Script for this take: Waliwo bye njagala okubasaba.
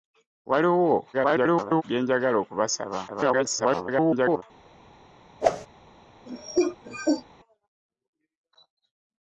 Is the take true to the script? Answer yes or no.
no